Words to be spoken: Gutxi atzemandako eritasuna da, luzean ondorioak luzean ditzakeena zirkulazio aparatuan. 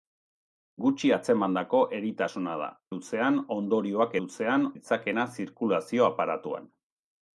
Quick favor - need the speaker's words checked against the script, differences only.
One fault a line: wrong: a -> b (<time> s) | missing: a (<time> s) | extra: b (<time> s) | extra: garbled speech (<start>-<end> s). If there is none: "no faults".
no faults